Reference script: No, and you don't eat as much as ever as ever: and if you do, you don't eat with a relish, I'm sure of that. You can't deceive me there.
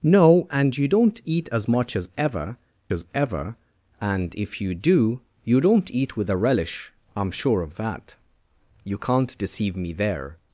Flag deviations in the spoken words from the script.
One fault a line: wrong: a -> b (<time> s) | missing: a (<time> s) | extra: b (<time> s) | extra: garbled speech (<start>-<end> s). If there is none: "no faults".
no faults